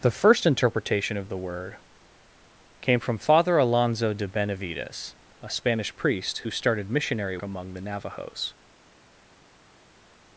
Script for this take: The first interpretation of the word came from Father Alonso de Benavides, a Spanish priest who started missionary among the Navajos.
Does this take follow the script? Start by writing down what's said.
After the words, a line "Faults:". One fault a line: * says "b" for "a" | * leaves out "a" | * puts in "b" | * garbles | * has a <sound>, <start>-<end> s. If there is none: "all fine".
The first interpretation of the word came from Father Alonso de Benavides, a Spanish priest who started missionary among the Navajos.
Faults:
all fine